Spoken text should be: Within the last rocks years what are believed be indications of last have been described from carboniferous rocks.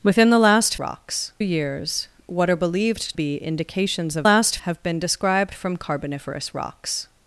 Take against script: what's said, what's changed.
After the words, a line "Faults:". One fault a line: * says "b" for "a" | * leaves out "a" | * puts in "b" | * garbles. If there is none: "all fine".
Within the last rocks years what are believed be indications of last have been described from carboniferous rocks.
Faults:
all fine